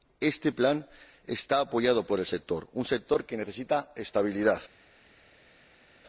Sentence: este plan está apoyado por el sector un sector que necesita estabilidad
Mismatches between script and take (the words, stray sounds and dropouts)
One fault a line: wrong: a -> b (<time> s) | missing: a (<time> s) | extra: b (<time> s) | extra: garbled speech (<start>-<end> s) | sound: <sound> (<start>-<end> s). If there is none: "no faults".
no faults